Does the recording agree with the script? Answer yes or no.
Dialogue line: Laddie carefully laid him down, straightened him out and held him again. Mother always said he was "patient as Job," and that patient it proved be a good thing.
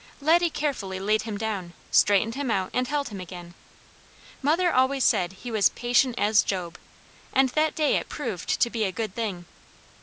no